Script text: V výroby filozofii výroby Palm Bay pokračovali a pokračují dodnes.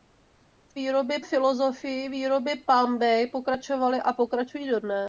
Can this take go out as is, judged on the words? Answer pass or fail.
pass